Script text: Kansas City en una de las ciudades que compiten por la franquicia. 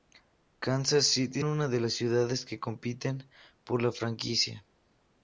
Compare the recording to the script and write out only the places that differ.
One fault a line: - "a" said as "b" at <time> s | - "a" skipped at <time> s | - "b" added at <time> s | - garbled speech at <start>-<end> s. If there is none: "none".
none